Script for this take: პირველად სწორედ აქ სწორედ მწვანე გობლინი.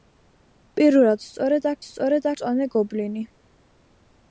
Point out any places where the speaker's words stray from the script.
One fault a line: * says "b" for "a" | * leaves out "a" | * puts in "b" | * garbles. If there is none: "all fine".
all fine